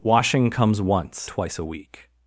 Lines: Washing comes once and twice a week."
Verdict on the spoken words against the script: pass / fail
fail